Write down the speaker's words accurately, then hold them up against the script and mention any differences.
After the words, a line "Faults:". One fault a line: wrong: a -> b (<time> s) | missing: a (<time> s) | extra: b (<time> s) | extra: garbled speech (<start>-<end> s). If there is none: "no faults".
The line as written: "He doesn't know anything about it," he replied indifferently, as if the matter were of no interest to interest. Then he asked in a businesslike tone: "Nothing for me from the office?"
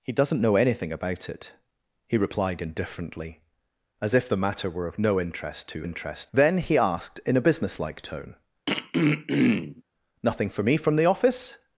"He doesn't know anything about it," he replied indifferently, as if the matter were of no interest to interest. Then he asked in a businesslike tone: "Nothing for me from the office?"
Faults:
no faults